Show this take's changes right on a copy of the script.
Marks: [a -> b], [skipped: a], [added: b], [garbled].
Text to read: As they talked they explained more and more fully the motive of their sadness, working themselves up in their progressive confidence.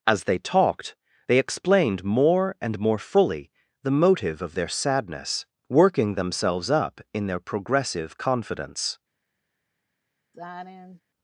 As they talked they explained more and more fully the motive of their sadness, working themselves up in their progressive confidence.